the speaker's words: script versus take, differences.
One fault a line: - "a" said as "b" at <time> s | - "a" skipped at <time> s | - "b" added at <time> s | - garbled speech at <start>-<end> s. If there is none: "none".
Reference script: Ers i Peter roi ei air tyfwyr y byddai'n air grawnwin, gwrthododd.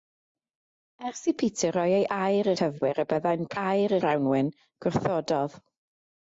none